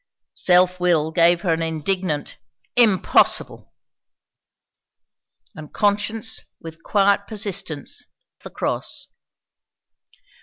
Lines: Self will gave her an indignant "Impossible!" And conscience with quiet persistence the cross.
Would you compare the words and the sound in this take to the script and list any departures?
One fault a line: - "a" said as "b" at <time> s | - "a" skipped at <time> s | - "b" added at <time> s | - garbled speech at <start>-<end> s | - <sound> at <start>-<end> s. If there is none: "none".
none